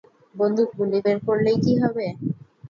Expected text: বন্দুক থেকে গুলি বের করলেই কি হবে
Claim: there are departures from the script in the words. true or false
true